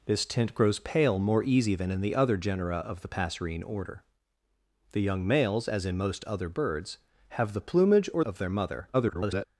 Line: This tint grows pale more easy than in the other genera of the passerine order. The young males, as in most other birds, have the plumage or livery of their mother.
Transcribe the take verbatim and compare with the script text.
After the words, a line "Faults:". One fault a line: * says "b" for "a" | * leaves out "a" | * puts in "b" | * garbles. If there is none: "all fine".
This tint grows pale more easy than in the other genera of the passerine order. The young males, as in most other birds, have the plumage or of their mother. [garbled]
Faults:
* leaves out "livery"
* garbles